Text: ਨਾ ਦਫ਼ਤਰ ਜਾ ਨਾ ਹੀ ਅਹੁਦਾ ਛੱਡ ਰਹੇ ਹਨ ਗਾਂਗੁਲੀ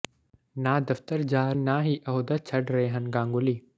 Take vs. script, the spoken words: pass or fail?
pass